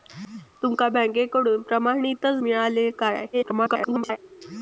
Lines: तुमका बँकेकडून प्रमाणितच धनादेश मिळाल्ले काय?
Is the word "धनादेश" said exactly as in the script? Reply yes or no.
no